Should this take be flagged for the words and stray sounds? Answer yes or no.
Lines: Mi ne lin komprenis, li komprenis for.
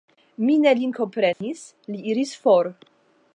yes